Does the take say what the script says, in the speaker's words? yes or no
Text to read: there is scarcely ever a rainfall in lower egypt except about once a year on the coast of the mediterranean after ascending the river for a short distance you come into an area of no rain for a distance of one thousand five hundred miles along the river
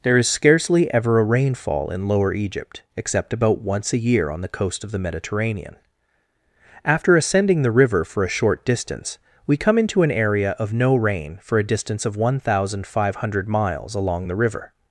no